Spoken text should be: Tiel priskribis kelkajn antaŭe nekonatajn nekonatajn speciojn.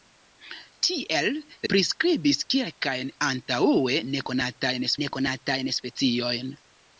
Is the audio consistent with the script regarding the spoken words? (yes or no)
yes